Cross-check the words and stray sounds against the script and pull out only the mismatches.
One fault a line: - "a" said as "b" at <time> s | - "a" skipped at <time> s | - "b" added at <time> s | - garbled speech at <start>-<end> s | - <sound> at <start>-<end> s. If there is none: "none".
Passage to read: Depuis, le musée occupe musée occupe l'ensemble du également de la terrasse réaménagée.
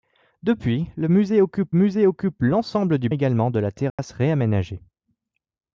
- dropout at 3.9-4.0 s